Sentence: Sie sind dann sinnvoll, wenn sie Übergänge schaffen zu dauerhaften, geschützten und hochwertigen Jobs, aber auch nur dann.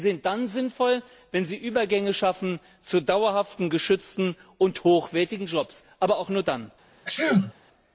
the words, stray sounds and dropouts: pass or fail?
fail